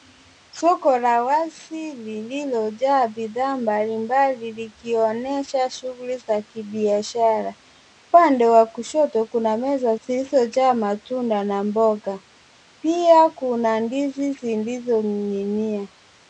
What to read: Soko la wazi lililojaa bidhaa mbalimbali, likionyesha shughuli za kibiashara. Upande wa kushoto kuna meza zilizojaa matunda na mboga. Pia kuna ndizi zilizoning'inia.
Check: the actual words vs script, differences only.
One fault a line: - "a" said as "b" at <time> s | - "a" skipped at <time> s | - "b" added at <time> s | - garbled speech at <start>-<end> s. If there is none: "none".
none